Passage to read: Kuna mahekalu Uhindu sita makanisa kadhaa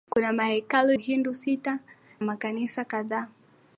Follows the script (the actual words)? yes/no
yes